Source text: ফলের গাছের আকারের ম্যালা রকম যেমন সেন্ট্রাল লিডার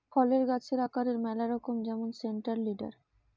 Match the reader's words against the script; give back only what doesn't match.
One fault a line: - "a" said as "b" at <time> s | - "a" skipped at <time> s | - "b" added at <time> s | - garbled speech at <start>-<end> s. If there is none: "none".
none